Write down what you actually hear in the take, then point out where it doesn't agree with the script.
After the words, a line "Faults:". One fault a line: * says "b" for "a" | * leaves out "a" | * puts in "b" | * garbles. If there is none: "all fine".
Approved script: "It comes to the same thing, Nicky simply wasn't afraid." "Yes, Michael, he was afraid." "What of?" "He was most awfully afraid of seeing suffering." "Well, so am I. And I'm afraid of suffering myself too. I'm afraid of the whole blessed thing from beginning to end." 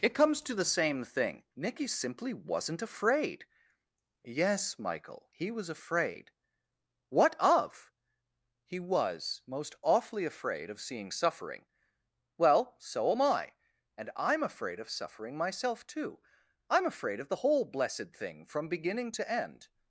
"It comes to the same thing, Nicky simply wasn't afraid." "Yes, Michael, he was afraid." "What of?" "He was most awfully afraid of seeing suffering." "Well, so am I. And I'm afraid of suffering myself too. I'm afraid of the whole blessed thing from beginning to end."
Faults:
all fine